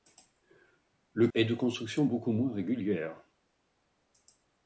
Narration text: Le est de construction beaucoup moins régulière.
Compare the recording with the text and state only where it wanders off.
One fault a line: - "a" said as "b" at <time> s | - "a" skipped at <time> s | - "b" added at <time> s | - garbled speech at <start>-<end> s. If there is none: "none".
none